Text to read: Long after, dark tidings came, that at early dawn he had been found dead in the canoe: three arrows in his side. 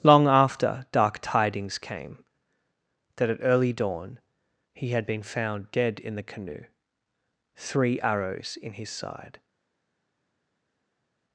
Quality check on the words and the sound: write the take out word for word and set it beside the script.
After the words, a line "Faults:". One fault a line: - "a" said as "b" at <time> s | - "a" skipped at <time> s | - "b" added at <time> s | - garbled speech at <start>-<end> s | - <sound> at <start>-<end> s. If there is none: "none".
Long after, dark tidings came, that at early dawn he had been found dead in the canoe: three arrows in his side.
Faults:
none